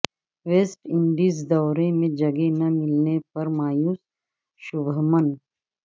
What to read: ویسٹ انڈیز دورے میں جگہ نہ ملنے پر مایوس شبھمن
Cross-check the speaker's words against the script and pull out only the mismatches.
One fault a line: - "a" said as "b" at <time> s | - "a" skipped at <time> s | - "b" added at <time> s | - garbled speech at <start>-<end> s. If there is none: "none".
none